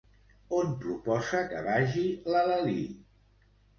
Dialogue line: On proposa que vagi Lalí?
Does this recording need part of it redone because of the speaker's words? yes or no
yes